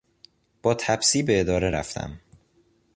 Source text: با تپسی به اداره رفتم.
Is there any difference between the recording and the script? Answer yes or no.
no